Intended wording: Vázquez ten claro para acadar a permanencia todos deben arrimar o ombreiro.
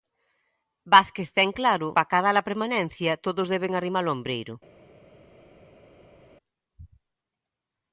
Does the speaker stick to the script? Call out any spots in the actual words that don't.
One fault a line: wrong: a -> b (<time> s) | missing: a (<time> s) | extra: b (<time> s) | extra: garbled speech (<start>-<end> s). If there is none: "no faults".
no faults